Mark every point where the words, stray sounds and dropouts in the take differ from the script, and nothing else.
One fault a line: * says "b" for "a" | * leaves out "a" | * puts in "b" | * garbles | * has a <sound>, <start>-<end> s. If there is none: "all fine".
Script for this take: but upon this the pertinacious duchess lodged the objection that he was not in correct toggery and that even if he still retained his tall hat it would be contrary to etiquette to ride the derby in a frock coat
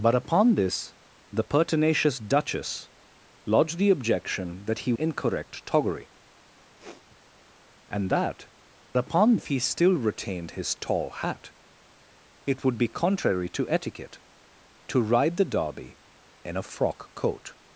* leaves out "was not"
* has a sniff, 6.8-7.2 s
* says "upon" for "even"